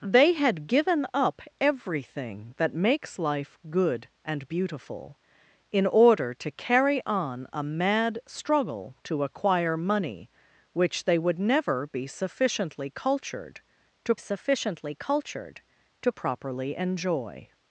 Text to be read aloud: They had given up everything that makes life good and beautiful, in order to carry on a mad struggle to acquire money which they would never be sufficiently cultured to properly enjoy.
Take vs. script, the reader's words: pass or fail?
fail